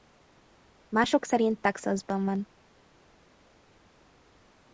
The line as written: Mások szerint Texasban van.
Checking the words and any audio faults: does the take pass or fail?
pass